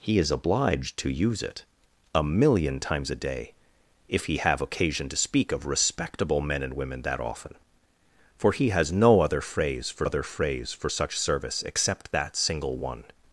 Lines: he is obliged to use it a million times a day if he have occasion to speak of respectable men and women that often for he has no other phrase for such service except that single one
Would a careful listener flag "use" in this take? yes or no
no